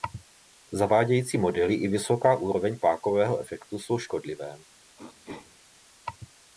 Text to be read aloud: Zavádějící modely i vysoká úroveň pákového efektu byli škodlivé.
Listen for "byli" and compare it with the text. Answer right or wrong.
wrong